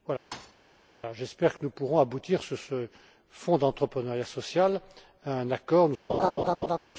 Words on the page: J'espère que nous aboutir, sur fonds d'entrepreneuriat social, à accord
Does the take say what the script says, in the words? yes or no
no